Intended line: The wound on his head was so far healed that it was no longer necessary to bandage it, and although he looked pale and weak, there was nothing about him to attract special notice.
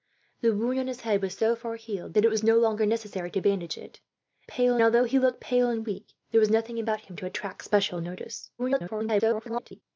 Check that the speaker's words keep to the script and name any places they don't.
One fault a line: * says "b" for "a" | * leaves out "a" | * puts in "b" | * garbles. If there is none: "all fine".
* says "pale" for "and"
* garbles